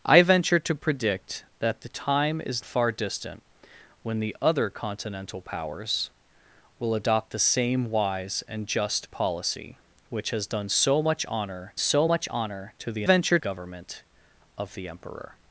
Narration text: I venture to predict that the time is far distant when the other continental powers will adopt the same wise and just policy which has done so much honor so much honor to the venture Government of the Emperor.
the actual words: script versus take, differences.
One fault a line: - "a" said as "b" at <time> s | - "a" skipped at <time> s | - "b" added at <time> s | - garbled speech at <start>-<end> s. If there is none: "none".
none